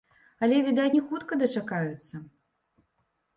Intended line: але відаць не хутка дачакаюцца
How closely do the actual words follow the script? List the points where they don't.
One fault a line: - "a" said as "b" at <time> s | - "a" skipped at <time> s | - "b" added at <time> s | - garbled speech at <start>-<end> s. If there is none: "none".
none